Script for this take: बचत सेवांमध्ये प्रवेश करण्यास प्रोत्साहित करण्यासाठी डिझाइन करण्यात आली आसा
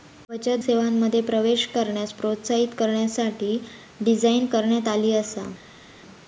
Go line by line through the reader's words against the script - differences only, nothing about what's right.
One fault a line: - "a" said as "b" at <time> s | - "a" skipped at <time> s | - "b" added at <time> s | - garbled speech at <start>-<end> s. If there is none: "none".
none